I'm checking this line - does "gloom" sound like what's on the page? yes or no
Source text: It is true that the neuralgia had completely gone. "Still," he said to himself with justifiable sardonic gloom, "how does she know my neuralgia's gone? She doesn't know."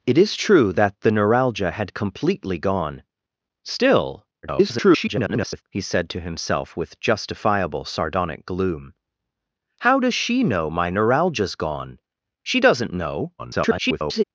yes